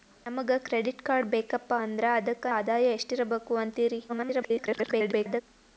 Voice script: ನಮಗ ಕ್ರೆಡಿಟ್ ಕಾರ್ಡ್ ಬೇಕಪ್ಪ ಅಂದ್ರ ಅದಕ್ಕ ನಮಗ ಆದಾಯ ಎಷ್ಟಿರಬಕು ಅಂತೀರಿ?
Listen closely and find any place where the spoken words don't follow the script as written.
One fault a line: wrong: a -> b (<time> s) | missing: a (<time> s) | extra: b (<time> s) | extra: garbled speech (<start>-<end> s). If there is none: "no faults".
missing: ನಮಗ (2.5 s)
extra: garbled speech (4.1-5.4 s)